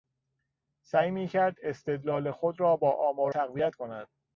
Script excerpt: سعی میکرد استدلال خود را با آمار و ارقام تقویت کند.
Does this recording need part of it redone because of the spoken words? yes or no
yes